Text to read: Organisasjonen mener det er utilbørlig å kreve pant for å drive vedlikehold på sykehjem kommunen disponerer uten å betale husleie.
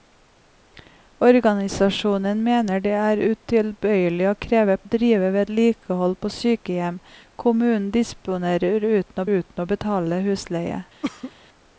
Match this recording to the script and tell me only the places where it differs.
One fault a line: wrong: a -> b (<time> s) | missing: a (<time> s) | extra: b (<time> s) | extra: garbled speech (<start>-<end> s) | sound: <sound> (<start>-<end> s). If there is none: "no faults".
missing: pant for (4.8 s)
extra: uten (9.3 s)
sound: cough (11.0-11.3 s)